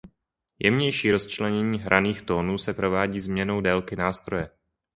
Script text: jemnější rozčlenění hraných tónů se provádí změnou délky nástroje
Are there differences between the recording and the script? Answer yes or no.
no